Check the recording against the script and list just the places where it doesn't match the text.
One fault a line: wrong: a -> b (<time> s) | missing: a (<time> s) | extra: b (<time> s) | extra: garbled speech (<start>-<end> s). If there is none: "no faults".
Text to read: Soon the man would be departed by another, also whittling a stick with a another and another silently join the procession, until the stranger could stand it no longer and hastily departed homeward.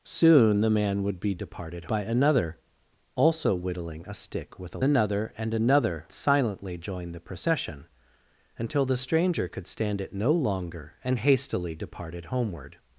no faults